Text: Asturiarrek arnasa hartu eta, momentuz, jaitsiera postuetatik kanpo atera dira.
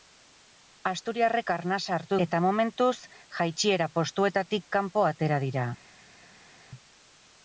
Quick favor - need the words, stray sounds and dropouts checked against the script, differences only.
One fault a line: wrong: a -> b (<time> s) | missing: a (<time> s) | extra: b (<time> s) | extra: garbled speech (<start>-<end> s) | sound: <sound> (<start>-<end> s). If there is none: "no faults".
no faults